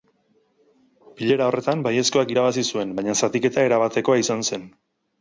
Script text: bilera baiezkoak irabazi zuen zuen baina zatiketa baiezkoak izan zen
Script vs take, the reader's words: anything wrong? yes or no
yes